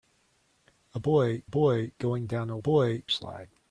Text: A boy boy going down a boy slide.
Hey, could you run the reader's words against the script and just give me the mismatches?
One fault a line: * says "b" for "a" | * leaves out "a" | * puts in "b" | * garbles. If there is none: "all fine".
all fine